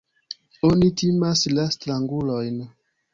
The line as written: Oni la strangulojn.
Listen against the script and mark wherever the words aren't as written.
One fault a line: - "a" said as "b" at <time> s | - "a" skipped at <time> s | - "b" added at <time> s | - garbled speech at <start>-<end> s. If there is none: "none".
- "timas" added at 1.0 s